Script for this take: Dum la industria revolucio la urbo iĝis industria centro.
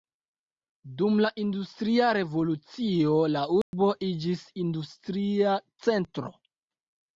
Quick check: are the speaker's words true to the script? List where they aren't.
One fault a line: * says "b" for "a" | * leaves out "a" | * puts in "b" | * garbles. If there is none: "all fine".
all fine